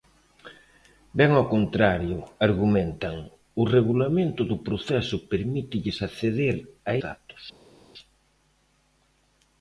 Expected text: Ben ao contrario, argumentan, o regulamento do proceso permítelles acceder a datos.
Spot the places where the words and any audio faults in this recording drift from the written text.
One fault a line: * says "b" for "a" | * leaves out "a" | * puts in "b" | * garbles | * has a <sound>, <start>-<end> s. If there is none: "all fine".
all fine